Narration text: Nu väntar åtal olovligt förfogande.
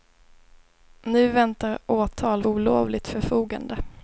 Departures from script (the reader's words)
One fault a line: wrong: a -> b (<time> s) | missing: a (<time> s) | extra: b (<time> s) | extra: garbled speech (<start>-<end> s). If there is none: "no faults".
no faults